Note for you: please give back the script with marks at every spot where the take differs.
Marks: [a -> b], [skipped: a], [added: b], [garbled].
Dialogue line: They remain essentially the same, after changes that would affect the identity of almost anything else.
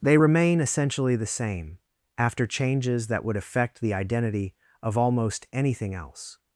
They remain essentially the same, after changes that would affect the identity of almost anything else.